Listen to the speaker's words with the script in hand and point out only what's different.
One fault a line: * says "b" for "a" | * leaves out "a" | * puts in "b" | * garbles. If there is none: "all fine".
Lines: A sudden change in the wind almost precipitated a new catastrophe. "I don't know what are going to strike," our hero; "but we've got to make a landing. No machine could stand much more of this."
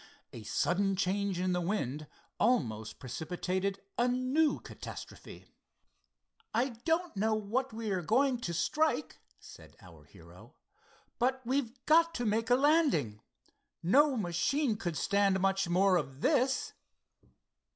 * puts in "we"
* puts in "said"